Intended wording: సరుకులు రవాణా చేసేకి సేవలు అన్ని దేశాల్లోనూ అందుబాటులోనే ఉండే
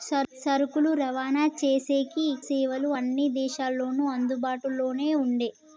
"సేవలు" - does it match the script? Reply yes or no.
yes